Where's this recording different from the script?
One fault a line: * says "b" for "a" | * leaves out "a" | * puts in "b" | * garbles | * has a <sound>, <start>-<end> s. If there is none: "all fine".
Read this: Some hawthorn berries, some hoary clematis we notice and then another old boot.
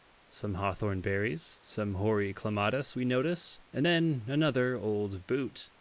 all fine